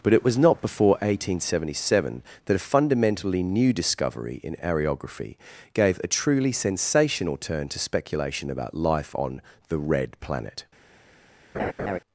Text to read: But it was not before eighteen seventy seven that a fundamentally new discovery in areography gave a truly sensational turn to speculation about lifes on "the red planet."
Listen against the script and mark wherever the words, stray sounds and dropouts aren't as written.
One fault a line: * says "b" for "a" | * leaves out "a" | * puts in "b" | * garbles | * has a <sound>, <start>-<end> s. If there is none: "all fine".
* says "life" for "lifes"
* has a laugh, 11.5-12.0 s